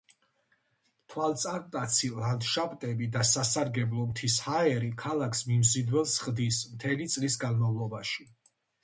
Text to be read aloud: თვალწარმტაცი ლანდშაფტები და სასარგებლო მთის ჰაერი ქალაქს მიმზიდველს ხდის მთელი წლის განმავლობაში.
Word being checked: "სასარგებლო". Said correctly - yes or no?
yes